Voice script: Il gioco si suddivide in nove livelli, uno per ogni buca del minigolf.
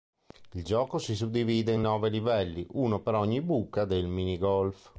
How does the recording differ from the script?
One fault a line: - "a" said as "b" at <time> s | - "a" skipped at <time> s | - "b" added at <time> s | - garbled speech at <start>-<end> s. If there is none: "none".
none